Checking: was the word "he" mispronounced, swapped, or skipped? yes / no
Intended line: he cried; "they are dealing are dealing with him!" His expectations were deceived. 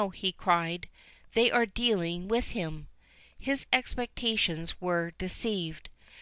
no